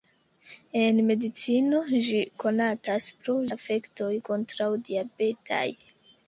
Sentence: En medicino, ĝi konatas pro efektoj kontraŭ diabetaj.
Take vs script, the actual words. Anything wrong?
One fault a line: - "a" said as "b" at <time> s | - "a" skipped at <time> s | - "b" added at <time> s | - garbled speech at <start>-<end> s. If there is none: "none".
none